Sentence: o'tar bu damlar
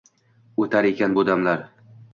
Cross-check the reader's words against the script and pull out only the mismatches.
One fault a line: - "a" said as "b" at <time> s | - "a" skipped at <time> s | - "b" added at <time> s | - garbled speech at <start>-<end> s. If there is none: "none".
- "ekan" added at 0.9 s